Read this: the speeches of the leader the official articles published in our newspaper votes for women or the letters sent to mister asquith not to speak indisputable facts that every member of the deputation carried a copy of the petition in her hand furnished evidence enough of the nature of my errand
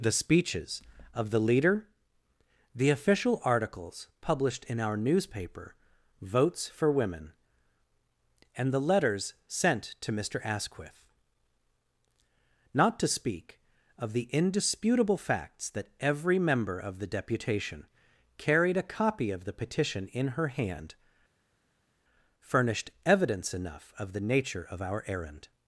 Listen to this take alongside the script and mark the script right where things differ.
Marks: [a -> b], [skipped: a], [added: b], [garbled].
the speeches of the leader the official articles published in our newspaper votes for women [or -> and] the letters sent to mister asquith not to speak [added: of the] indisputable facts that every member of the deputation carried a copy of the petition in her hand furnished evidence enough of the nature of [my -> our] errand